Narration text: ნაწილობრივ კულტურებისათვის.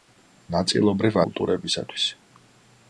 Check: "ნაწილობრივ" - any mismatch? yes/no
no